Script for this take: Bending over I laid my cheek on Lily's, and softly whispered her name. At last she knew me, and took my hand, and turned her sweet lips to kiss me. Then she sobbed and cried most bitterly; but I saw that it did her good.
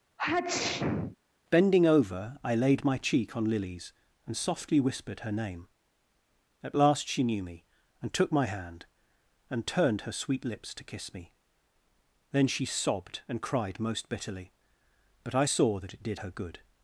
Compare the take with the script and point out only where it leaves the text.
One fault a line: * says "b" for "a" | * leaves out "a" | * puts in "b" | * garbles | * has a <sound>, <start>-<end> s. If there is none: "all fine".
* has a sneeze, 0.2-1.2 s